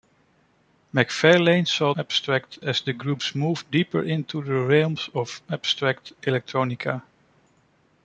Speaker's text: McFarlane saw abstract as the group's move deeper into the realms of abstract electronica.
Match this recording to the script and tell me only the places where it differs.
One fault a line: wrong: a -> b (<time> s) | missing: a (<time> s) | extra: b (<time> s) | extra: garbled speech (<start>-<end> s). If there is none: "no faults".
no faults